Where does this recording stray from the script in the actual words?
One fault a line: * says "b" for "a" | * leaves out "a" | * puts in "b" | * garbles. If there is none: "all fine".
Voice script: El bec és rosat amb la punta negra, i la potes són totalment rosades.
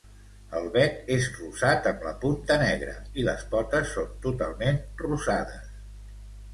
* says "les" for "la"